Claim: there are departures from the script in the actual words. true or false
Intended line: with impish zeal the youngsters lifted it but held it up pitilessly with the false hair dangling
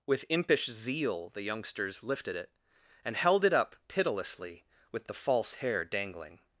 true